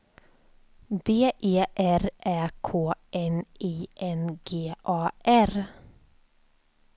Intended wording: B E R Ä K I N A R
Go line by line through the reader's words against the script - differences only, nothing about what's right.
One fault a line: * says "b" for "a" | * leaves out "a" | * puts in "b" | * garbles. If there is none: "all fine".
* puts in "N"
* puts in "G"